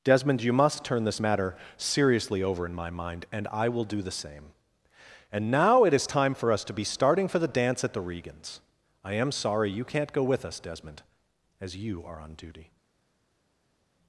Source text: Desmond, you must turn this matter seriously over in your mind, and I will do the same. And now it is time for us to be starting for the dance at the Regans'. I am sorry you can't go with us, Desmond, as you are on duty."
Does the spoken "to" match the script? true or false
true